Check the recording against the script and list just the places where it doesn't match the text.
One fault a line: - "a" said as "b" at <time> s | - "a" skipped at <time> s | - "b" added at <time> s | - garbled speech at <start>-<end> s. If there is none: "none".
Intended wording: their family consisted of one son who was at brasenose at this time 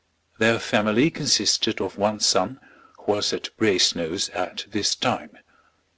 none